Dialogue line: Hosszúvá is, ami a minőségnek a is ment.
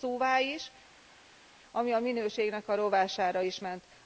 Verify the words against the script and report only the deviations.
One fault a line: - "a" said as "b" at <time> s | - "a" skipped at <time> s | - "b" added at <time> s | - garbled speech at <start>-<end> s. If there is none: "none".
- "rovására" added at 2.7 s